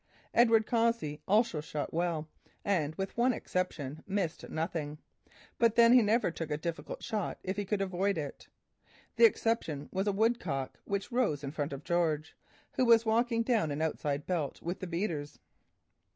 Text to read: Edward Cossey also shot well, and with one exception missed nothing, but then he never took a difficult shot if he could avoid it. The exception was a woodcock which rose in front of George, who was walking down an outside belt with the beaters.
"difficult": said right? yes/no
yes